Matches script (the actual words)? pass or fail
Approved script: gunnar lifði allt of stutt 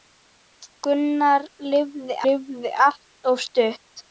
fail